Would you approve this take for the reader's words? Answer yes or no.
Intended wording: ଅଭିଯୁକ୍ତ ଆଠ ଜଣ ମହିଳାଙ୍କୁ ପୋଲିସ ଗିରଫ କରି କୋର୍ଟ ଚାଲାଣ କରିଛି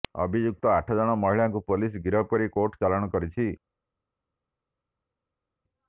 yes